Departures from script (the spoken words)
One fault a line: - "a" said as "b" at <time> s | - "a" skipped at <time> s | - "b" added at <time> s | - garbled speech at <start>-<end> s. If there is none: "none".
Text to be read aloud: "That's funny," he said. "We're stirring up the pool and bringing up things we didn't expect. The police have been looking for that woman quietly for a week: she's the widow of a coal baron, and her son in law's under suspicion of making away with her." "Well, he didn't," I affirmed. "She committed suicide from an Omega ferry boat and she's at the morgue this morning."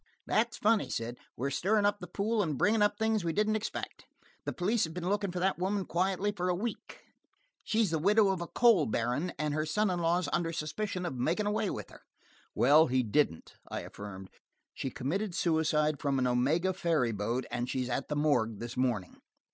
- "he" skipped at 0.9 s